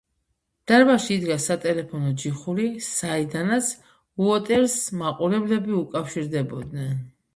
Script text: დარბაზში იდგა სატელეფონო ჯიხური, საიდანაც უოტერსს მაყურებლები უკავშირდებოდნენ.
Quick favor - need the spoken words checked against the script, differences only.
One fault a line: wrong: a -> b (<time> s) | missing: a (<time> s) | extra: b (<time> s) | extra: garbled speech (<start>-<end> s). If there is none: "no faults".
no faults